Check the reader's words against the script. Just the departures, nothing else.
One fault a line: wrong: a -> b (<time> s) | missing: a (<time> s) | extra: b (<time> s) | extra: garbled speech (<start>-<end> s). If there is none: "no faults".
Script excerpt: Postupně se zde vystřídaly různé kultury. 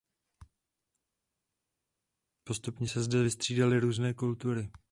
no faults